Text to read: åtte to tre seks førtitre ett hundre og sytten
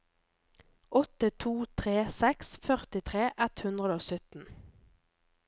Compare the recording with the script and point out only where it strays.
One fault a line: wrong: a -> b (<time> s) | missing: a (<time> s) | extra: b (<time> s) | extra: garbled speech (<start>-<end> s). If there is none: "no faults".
no faults